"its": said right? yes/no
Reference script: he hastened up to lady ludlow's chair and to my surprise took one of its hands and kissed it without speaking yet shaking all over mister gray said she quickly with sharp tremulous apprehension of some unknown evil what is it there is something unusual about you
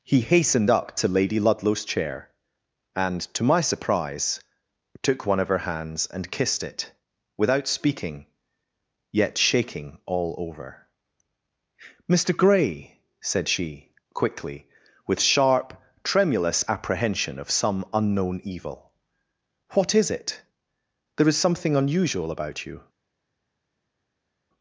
no